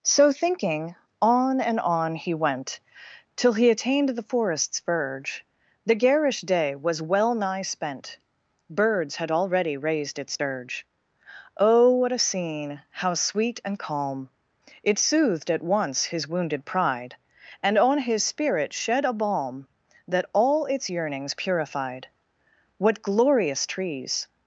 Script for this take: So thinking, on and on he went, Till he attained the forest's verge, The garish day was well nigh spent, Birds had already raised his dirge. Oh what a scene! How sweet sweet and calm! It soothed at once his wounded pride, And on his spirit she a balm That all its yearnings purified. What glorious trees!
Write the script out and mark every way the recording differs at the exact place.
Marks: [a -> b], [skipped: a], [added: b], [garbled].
So thinking, on and on he went, Till he attained the forest's verge, The garish day was well nigh spent, Birds had already raised [his -> its] dirge. Oh what a scene! How sweet [skipped: sweet] and calm! It soothed at once his wounded pride, And on his spirit [she -> shed] a balm That all its yearnings purified. What glorious trees!